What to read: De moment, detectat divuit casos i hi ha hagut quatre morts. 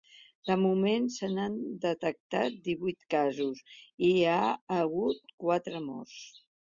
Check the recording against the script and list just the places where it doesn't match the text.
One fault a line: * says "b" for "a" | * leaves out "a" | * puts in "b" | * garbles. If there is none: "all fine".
* puts in "se n'han"